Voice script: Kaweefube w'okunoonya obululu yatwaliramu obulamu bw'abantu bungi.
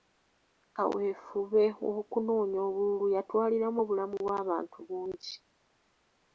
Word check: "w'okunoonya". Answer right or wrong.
right